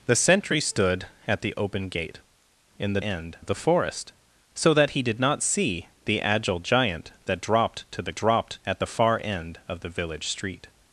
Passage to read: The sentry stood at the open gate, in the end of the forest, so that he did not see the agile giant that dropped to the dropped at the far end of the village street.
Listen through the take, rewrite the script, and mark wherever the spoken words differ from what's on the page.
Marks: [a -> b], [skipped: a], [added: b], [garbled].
The sentry stood at the open gate, in the end of the forest, so that he did not see the agile giant that dropped to the dropped at the far end of the village street.